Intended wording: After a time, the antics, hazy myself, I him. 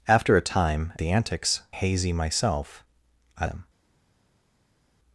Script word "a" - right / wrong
right